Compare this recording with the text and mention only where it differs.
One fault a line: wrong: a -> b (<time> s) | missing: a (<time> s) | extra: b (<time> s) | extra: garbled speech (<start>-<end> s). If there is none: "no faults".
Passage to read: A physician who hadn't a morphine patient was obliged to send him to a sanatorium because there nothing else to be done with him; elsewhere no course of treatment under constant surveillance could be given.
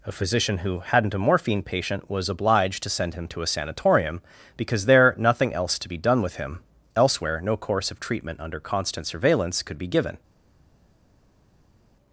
no faults